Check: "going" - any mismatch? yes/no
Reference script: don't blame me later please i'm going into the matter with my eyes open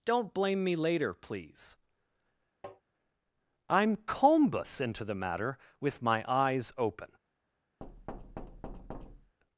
yes